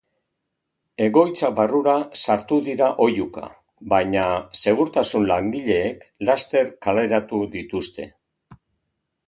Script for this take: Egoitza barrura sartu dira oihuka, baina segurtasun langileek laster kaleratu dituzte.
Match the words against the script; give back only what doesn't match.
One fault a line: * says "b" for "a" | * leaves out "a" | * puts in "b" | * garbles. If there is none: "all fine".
all fine